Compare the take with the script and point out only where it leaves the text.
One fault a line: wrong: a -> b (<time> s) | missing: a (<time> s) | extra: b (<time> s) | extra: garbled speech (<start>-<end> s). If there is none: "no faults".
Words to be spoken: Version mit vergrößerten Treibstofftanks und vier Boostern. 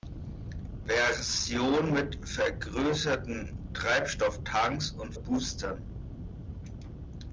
missing: vier (5.1 s)